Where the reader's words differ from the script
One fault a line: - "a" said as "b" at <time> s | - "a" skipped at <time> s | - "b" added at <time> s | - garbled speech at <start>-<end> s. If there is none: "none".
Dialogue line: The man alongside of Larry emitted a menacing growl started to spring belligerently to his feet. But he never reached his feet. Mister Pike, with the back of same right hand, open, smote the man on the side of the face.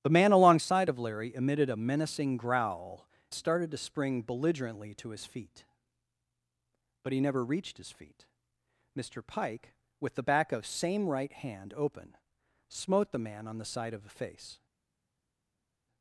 none